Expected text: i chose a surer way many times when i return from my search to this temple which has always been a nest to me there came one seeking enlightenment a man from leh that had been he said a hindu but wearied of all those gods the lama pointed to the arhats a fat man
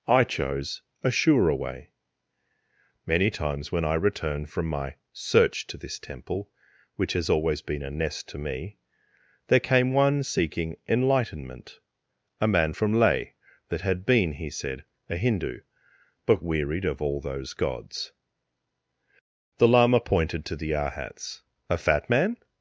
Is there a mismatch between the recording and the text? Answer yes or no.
no